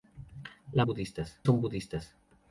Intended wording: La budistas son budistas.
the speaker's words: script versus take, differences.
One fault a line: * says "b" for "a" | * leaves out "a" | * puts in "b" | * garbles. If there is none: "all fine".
all fine